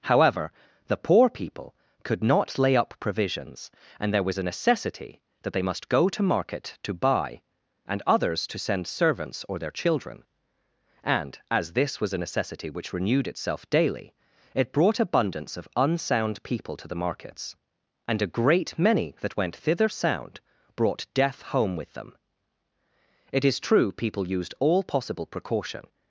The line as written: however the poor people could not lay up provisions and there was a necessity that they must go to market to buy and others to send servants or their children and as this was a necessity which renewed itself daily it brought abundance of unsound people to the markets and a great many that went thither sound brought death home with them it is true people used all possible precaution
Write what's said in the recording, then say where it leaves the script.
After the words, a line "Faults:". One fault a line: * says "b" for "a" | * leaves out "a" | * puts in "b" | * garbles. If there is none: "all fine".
however the poor people could not lay up provisions and there was a necessity that they must go to market to buy and others to send servants or their children and as this was a necessity which renewed itself daily it brought abundance of unsound people to the markets and a great many that went thither sound brought death home with them it is true people used all possible precaution
Faults:
all fine